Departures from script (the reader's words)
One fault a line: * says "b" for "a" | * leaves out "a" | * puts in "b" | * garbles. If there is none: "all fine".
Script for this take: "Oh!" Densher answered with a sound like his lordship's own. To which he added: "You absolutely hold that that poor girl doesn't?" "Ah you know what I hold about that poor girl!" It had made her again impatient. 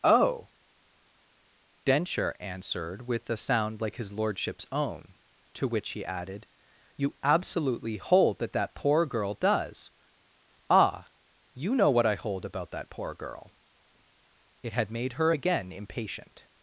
* says "does" for "doesn't"